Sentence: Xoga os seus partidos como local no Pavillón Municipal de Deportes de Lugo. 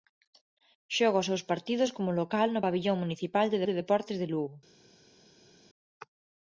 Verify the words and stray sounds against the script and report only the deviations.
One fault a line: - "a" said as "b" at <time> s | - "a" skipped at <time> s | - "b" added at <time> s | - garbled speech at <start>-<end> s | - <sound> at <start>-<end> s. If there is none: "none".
- "de" added at 3.6 s